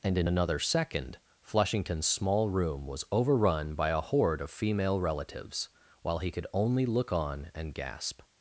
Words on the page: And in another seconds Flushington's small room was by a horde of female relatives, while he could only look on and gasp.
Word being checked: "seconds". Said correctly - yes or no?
no